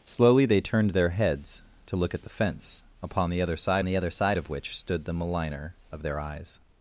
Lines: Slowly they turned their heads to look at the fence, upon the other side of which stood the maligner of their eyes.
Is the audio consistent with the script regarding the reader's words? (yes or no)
no